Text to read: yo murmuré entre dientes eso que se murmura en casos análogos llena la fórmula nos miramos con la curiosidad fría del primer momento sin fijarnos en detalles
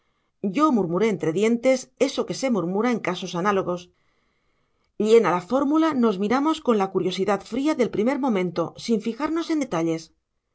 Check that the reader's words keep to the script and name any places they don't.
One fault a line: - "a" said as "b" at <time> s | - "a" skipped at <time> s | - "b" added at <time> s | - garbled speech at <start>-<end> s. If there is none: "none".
none